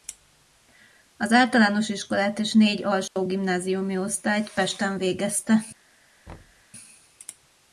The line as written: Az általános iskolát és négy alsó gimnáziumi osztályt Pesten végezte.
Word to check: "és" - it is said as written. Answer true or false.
true